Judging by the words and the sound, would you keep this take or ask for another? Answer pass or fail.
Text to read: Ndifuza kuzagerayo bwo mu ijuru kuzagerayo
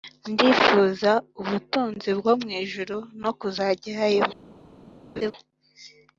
fail